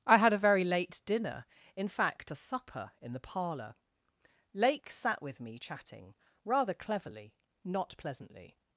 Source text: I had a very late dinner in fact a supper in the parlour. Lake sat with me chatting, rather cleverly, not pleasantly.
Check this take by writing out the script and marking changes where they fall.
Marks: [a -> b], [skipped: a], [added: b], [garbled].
I had a very late dinner in fact a supper in the parlour. Lake sat with me chatting, rather cleverly, not pleasantly.